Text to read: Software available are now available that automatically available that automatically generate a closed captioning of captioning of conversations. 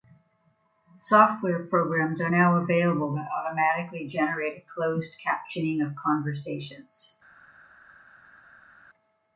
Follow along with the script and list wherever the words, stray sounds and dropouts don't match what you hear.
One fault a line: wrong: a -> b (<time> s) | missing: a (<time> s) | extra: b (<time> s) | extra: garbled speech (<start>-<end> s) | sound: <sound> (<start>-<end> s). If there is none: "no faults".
wrong: available -> programs (1.7 s)
missing: available that automatically (4.1 s)
missing: captioning of (6.0 s)